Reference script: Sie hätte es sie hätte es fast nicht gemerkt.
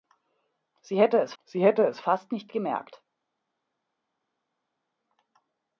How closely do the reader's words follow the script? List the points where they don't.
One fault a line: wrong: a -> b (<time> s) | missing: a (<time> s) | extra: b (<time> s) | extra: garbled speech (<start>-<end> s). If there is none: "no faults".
no faults